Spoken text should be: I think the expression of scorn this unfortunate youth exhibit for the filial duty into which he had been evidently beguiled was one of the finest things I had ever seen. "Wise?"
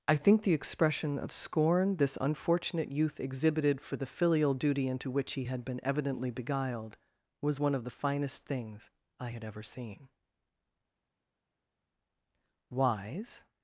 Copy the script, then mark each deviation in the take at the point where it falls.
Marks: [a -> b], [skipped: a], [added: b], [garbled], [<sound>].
I think the expression of scorn this unfortunate youth [exhibit -> exhibited] for the filial duty into which he had been evidently beguiled was one of the finest things I had ever seen. "Wise?"